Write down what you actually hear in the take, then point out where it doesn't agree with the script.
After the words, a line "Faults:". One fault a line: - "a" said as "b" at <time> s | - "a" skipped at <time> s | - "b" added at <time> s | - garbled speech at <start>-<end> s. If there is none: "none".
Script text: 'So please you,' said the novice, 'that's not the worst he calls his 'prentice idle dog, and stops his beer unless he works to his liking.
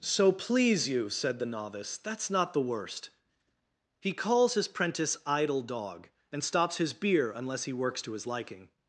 'So please you,' said the novice, 'that's not the worst he calls his 'prentice idle dog, and stops his beer unless he works to his liking.
Faults:
none